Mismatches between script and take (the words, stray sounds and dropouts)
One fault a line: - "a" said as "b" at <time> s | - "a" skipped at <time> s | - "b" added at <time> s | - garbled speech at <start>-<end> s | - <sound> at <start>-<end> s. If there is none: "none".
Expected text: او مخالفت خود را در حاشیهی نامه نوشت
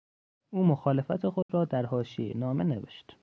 - dropout at 1.4-1.5 s